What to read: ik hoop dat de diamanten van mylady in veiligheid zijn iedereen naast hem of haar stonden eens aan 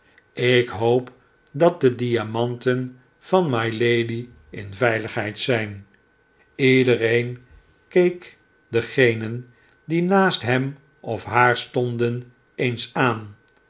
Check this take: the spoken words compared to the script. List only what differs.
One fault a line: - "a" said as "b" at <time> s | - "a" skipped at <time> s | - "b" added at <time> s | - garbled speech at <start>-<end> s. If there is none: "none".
- "keek degenen die" added at 7.9 s